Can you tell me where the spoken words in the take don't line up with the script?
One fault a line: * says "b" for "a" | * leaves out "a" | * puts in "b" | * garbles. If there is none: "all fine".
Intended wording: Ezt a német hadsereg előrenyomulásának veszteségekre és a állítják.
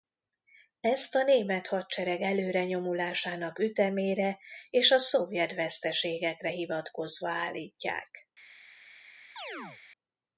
* says "ütemére" for "veszteségekre"
* puts in "szovjet veszteségekre hivatkozva"